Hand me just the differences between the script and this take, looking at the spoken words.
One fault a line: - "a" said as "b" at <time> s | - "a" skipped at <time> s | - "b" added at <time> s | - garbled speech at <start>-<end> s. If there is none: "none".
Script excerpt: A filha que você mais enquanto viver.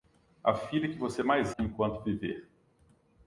none